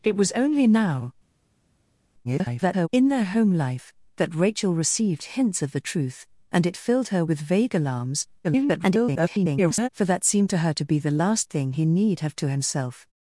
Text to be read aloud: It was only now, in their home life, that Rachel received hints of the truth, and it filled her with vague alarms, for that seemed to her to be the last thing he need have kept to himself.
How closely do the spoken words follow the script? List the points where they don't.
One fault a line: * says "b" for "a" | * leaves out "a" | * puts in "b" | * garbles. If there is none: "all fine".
* garbles
* garbles
* leaves out "kept"